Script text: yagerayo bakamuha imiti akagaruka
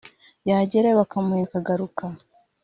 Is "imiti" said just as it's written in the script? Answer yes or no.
no